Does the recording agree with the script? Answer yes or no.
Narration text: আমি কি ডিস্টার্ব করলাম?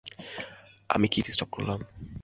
yes